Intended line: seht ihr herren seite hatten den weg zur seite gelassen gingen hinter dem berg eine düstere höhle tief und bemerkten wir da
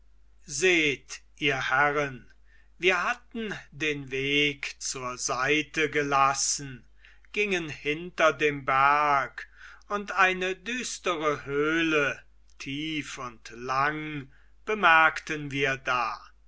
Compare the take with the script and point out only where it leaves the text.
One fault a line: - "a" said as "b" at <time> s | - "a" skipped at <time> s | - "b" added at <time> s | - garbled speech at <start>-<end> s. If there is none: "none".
- "seite" said as "wir" at 2.8 s
- "und" added at 9.9 s
- "lang" added at 13.5 s